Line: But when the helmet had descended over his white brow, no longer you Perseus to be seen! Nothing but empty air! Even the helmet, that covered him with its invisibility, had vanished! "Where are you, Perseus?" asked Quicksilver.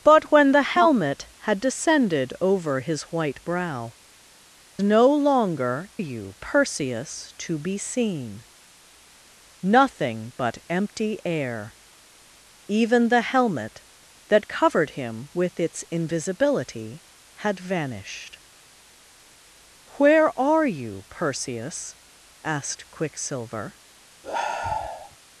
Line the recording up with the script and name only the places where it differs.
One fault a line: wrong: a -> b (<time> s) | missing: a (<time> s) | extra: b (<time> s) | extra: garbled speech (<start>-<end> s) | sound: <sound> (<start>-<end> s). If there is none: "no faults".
sound: sigh (24.2-25.2 s)